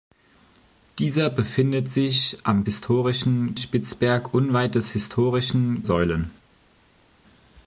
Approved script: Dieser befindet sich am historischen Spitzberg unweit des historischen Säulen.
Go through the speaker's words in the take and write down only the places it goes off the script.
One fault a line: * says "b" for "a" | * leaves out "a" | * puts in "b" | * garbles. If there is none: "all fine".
all fine